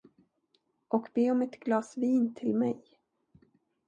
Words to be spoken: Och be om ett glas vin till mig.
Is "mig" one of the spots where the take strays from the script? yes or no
no